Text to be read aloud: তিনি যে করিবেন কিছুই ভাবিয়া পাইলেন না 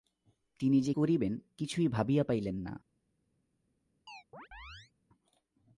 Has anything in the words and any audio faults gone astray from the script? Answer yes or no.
yes